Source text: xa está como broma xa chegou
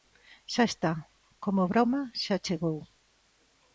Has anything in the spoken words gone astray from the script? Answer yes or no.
no